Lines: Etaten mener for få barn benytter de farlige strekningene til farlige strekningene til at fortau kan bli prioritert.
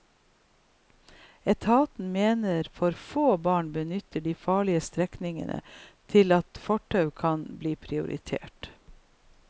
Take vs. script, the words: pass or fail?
fail